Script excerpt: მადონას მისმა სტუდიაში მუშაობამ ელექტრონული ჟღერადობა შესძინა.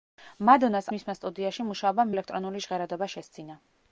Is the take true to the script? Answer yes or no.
yes